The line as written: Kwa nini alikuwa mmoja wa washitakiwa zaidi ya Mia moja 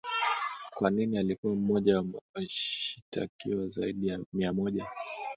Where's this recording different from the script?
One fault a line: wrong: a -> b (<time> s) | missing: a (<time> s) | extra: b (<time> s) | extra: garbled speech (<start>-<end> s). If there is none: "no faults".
no faults